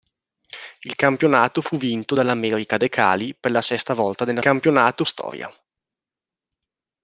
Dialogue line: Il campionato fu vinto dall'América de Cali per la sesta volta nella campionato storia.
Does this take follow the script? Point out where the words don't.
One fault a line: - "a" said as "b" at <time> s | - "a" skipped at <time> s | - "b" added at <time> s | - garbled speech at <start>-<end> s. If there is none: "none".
none